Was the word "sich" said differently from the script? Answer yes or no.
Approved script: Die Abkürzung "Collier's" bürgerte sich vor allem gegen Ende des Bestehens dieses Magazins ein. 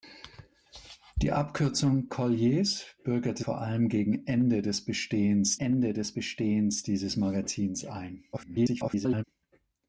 yes